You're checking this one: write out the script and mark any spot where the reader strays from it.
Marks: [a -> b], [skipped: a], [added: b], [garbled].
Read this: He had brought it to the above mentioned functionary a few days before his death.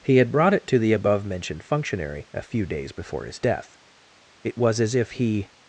He had brought it to the above mentioned functionary a few days before his death. [added: It was as if he]